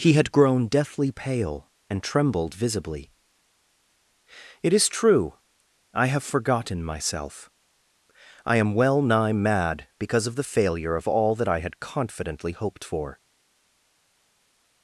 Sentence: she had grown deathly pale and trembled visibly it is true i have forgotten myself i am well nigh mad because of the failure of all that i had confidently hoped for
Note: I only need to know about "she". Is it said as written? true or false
false